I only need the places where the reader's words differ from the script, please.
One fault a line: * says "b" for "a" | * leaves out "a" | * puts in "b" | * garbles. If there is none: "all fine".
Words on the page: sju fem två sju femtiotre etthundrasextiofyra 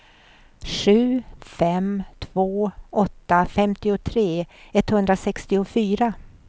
* says "åtta" for "sju"